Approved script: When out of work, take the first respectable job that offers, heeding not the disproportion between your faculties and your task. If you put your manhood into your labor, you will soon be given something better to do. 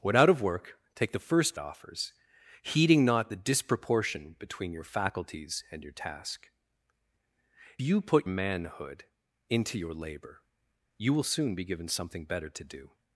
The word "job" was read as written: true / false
false